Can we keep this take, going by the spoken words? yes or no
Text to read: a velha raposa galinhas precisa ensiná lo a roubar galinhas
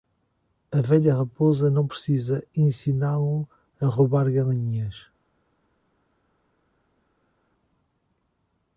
no